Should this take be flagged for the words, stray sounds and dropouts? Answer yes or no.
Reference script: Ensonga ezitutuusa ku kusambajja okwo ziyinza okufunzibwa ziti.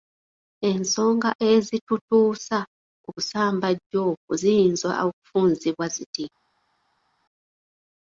no